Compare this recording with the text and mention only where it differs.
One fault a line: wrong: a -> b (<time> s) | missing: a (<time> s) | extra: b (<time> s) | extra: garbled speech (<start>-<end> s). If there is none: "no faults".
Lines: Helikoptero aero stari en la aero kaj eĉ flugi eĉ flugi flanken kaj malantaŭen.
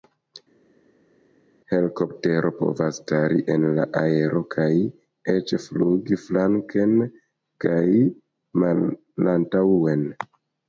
wrong: aero -> povas (2.6 s)
missing: eĉ flugi (6.2 s)